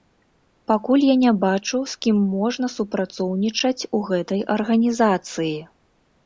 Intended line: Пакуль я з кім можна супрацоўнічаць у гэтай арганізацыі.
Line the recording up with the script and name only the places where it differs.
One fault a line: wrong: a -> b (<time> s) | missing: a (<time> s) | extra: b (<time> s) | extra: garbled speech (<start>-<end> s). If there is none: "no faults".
extra: не бачу (1.2 s)